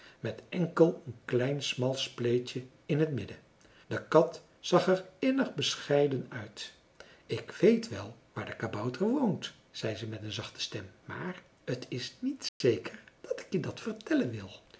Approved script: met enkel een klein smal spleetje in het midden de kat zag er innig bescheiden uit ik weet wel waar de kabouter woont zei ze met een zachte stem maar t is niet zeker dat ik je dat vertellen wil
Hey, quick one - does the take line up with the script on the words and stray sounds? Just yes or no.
no